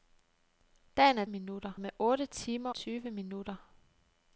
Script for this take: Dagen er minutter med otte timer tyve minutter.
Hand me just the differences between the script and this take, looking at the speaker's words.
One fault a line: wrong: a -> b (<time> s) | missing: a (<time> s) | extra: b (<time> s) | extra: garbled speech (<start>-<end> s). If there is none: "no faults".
no faults